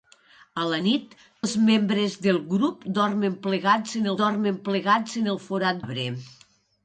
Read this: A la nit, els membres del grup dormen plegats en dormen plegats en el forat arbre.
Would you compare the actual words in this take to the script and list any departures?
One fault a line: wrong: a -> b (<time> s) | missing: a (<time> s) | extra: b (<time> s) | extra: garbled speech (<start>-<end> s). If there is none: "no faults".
no faults